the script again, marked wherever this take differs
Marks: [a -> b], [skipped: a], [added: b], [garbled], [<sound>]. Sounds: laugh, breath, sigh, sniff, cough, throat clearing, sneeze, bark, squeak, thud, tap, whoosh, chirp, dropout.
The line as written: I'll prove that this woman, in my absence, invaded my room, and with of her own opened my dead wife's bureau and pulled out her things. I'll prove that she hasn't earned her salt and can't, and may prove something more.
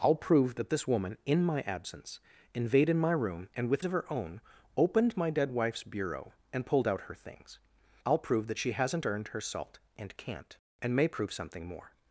I'll prove that this woman, in my absence, invaded my room, and with of her own opened my dead wife's bureau and pulled out her things. I'll prove that she hasn't earned her salt and can't, and may prove something more.